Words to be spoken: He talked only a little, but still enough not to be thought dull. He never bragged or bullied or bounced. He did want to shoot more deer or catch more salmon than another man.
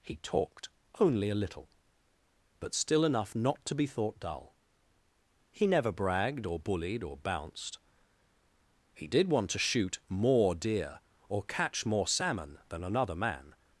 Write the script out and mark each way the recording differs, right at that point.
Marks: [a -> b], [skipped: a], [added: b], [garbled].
He talked only a little, but still enough not to be thought dull. He never bragged or bullied or bounced. He did want to shoot more deer or catch more salmon than another man.